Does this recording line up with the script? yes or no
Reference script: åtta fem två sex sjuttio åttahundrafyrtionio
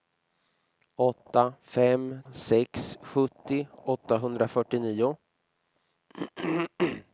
no